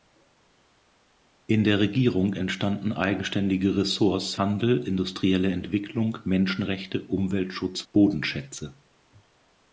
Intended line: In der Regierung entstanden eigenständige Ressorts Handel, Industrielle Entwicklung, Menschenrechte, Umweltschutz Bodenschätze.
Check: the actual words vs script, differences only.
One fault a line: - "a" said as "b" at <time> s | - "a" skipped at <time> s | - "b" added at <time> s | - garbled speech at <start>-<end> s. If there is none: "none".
none